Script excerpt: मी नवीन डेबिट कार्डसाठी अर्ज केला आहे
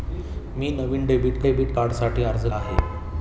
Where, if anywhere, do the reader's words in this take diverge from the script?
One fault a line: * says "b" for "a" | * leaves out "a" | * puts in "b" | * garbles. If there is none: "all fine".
* puts in "डेबिट"
* leaves out "केला"